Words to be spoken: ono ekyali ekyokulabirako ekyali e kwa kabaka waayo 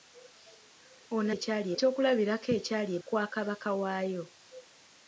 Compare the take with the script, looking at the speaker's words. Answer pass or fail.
pass